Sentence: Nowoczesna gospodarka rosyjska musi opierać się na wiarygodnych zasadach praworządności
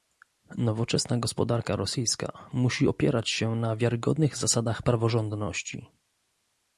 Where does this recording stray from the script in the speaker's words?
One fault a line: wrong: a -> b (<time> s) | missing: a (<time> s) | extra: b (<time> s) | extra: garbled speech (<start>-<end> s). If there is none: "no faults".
no faults